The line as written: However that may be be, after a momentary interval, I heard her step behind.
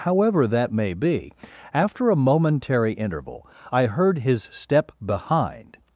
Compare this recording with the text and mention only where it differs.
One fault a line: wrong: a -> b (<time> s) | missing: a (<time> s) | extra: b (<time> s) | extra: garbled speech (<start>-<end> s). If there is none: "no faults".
missing: be (1.3 s)
wrong: her -> his (4.2 s)